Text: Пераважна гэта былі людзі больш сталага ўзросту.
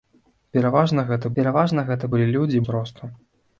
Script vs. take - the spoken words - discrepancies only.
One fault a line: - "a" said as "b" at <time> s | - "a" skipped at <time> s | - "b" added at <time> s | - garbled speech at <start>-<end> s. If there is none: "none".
- "пераважна гэта" added at 1.4 s
- "больш сталага" skipped at 2.6 s